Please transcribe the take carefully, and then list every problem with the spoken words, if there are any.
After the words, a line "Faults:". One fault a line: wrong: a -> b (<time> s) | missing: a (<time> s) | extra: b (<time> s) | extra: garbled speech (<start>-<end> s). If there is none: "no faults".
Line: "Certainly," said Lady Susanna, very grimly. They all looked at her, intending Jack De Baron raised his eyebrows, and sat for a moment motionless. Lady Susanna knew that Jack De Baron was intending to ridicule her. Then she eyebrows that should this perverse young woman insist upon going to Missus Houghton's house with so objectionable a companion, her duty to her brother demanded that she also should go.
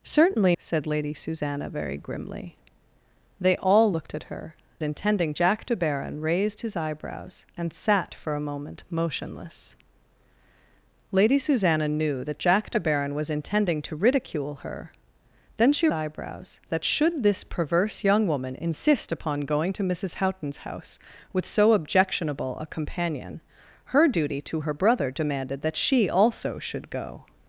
"Certainly," said Lady Susanna, very grimly. They all looked at her, intending Jack De Baron raised his eyebrows, and sat for a moment motionless. Lady Susanna knew that Jack De Baron was intending to ridicule her. Then she eyebrows that should this perverse young woman insist upon going to Missus Houghton's house with so objectionable a companion, her duty to her brother demanded that she also should go.
Faults:
no faults